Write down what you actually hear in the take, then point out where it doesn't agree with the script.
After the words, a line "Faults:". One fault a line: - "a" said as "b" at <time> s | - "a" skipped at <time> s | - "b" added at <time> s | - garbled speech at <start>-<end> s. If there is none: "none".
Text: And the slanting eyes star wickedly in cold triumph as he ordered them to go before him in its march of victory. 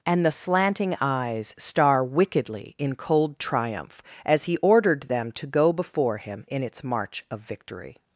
And the slanting eyes star wickedly in cold triumph as he ordered them to go before him in its march of victory.
Faults:
none